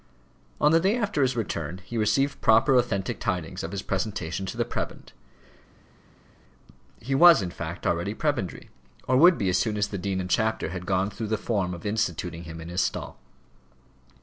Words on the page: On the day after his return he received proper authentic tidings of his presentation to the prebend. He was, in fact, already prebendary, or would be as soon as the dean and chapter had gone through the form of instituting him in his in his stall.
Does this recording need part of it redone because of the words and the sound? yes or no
yes